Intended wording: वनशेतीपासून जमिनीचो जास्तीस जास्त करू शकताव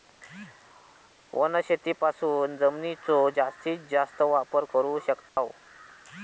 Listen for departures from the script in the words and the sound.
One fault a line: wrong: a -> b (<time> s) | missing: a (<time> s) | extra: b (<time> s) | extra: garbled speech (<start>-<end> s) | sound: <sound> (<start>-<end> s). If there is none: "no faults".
extra: वापर (4.2 s)
sound: dropout (5.3-5.4 s)